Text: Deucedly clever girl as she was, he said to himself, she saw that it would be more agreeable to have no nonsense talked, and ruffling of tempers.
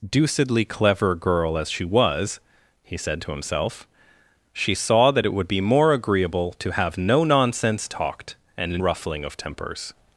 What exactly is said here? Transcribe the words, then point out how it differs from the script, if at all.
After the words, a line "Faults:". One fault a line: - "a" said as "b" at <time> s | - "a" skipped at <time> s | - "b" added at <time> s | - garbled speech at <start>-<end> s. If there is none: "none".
Deucedly clever girl as she was, he said to himself, she saw that it would be more agreeable to have no nonsense talked, and ruffling of tempers.
Faults:
none